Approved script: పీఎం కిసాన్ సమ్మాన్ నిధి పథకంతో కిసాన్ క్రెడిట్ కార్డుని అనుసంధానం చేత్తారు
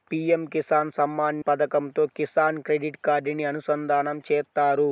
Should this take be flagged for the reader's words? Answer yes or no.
yes